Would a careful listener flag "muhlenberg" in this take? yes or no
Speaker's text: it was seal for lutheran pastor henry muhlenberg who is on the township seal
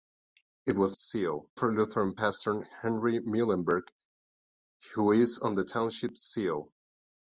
no